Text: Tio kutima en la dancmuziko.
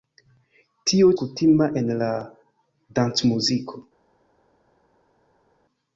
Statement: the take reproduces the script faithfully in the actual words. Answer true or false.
true